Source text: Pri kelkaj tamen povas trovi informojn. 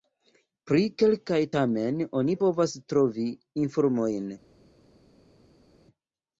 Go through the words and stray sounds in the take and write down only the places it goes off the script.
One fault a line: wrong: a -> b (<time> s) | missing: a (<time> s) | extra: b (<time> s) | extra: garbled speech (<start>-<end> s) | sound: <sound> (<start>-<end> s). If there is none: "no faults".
extra: oni (2.2 s)